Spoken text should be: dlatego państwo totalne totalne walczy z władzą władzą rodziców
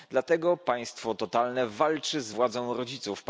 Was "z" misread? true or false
false